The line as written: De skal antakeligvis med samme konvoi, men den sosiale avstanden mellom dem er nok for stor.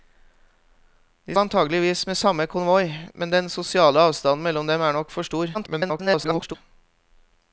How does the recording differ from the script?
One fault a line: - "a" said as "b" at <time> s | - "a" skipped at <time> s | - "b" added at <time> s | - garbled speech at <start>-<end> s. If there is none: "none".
- "skal" skipped at 1.4 s
- garbled speech at 5.5-6.6 s